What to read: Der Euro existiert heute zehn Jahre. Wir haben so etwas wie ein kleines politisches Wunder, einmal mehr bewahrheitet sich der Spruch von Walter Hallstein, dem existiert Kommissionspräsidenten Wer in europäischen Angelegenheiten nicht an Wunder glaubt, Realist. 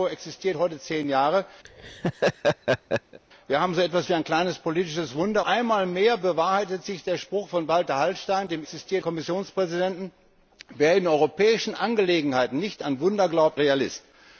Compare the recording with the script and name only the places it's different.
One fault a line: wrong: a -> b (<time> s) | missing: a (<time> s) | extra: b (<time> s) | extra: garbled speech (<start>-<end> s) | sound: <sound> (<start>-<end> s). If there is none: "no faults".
sound: laugh (1.6-3.2 s)